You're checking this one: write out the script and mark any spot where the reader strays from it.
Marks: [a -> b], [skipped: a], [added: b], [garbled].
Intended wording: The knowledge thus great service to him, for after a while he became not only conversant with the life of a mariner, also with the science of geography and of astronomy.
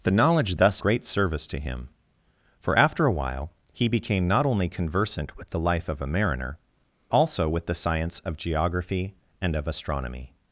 The knowledge thus great service to him, for after a while he became not only conversant with the life of a mariner, also with the science of geography and of astronomy.